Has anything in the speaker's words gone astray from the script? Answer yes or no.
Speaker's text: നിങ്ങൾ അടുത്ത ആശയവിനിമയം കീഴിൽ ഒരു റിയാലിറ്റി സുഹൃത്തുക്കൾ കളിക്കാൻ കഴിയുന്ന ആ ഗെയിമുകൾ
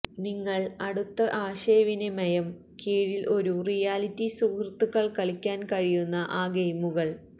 no